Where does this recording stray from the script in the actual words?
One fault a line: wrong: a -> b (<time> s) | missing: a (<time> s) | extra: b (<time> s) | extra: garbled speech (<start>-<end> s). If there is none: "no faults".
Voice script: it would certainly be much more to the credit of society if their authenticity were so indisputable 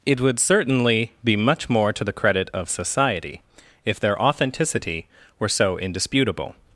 no faults